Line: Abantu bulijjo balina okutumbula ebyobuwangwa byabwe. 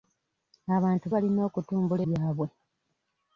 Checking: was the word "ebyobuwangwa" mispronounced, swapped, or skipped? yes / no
yes